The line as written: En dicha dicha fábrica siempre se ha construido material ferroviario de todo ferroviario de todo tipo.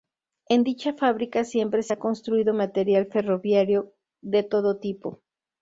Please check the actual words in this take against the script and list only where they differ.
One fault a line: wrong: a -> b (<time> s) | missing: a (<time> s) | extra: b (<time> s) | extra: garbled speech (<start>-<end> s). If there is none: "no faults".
missing: dicha (0.9 s)
missing: ferroviario de todo (4.8 s)